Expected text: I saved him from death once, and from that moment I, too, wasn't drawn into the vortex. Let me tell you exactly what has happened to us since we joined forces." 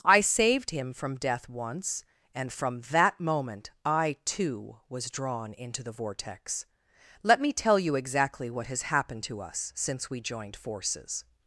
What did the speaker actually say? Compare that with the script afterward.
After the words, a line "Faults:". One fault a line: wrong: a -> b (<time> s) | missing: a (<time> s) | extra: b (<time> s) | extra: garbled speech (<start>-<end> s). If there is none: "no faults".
I saved him from death once, and from that moment I, too, was drawn into the vortex. Let me tell you exactly what has happened to us since we joined forces."
Faults:
wrong: wasn't -> was (4.9 s)